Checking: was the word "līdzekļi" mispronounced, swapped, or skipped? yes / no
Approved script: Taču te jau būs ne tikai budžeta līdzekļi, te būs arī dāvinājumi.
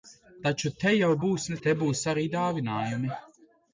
yes